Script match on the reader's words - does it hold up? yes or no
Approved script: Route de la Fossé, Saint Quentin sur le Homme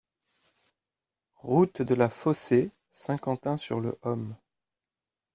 yes